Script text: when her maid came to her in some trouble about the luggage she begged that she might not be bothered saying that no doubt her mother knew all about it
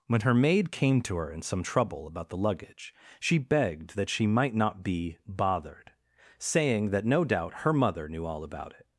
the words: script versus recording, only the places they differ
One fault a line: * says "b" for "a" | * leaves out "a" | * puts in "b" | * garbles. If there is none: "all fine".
all fine